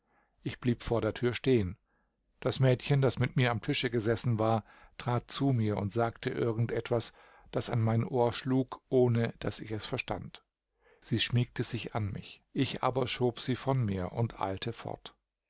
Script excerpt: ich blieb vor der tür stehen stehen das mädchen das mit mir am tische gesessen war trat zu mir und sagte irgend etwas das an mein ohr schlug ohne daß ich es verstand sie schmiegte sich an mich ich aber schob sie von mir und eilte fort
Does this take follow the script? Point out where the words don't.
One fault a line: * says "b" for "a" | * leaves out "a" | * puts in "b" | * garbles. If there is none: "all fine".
* leaves out "stehen"